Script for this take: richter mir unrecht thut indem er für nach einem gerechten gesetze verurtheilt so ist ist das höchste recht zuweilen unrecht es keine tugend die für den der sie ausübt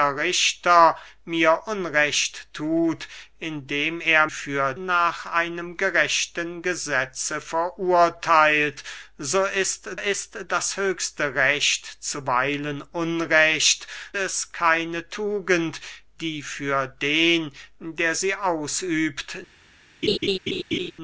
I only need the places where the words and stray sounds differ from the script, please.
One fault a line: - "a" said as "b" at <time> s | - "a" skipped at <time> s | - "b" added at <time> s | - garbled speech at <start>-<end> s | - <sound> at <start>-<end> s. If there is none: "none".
- laugh at 20.0-20.9 s